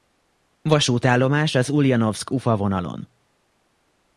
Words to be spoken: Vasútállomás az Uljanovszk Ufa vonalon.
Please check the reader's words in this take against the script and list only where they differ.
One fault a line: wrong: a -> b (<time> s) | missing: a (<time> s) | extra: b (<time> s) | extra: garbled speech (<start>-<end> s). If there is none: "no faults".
no faults